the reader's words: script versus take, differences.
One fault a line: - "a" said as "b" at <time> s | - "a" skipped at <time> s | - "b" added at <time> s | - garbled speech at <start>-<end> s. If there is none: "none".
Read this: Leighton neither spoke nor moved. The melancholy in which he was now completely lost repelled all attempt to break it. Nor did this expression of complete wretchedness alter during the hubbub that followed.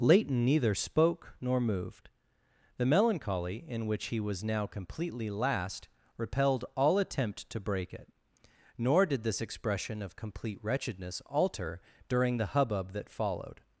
- "lost" said as "last" at 5.3 s